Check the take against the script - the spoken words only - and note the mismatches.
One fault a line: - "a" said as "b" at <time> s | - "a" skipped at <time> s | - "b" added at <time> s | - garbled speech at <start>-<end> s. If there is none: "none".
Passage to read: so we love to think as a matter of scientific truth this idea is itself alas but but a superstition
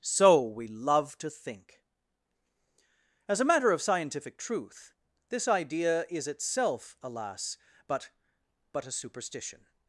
none